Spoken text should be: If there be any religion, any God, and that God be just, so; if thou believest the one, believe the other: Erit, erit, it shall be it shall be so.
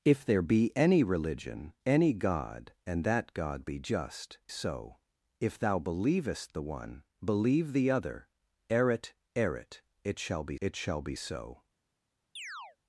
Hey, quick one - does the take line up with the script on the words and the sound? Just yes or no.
no